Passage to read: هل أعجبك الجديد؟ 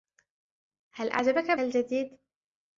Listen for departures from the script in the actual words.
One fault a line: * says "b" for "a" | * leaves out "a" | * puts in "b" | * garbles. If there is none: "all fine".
all fine